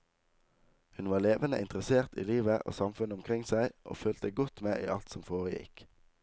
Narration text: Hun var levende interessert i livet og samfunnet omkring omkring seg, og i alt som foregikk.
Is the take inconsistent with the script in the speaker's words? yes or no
yes